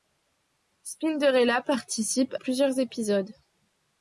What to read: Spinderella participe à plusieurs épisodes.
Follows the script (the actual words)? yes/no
no